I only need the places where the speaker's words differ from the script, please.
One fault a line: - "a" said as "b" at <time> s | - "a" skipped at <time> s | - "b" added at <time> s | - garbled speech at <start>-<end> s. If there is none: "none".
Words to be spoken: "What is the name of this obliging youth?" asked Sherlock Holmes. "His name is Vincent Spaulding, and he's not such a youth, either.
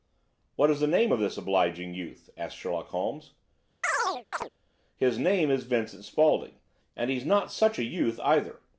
none